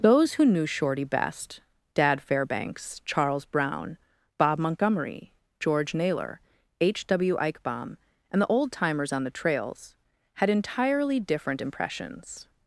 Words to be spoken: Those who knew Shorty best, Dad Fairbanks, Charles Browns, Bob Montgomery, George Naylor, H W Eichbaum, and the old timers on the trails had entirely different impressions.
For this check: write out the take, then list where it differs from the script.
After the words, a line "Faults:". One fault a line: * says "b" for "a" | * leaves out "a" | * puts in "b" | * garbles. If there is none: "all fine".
Those who knew Shorty best, Dad Fairbanks, Charles Brown, Bob Montgomery, George Naylor, H W Eichbaum, and the old timers on the trails had entirely different impressions.
Faults:
* says "Brown" for "Browns"